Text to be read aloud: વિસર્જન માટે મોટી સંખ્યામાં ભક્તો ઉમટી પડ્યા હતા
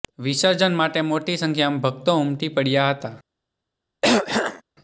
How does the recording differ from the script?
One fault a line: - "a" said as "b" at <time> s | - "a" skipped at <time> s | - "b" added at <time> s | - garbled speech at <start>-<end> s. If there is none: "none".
none